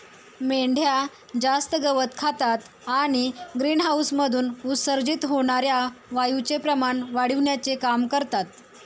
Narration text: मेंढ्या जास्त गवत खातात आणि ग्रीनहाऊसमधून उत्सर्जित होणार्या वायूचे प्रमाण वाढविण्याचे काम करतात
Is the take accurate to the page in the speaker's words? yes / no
yes